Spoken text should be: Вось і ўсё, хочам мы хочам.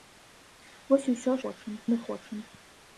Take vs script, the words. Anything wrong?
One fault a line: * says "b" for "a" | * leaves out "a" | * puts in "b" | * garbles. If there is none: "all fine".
all fine